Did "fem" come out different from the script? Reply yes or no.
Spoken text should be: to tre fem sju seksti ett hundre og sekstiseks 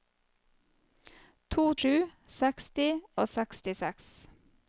yes